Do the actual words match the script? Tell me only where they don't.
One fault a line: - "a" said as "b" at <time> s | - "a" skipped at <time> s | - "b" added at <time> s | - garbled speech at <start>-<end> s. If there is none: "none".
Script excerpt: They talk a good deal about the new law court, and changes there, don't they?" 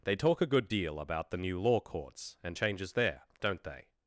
- "court" said as "courts" at 1.8 s